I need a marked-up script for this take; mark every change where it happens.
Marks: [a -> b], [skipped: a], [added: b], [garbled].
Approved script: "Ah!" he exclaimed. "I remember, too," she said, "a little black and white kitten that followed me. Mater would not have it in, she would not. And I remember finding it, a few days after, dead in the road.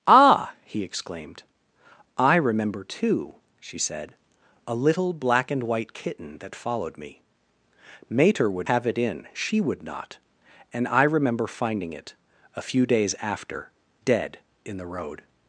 "Ah!" he exclaimed. "I remember, too," she said, "a little black and white kitten that followed me. Mater would [skipped: not] have it in, she would not. And I remember finding it, a few days after, dead in the road.